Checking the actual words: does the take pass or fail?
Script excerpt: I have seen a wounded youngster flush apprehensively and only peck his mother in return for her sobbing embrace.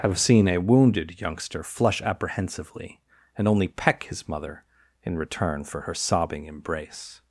fail